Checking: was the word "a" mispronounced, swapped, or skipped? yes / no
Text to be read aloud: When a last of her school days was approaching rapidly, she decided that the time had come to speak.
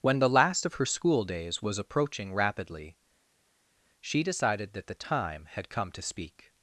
yes